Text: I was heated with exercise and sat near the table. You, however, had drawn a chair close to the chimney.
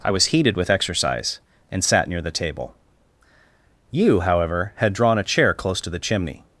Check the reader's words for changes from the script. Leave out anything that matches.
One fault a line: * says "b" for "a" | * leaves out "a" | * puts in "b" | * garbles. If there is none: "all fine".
all fine